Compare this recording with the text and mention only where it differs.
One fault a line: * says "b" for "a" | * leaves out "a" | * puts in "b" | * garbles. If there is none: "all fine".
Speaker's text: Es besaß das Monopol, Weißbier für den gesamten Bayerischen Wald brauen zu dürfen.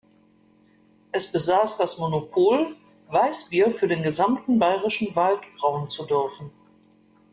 all fine